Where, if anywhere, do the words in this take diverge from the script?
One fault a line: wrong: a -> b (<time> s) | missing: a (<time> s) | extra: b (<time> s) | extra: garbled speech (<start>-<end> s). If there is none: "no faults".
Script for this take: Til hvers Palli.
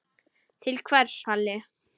no faults